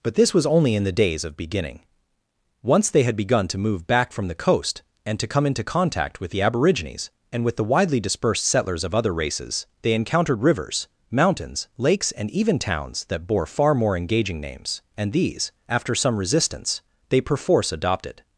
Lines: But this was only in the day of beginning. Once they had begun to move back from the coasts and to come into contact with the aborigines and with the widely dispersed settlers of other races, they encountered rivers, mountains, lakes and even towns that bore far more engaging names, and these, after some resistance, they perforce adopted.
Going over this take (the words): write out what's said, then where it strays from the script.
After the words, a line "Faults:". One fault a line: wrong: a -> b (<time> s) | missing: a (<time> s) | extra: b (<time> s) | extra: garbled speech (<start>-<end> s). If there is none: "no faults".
But this was only in the days of beginning. Once they had begun to move back from the coast and to come into contact with the aborigines and with the widely dispersed settlers of other races, they encountered rivers, mountains, lakes and even towns that bore far more engaging names, and these, after some resistance, they perforce adopted.
Faults:
wrong: day -> days (0.9 s)
wrong: coasts -> coast (4.3 s)